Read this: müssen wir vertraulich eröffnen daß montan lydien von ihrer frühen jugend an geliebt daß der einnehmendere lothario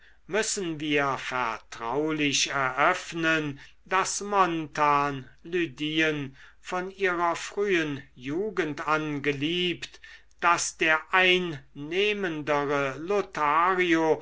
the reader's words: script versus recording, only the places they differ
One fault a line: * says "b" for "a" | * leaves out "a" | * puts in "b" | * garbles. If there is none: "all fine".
all fine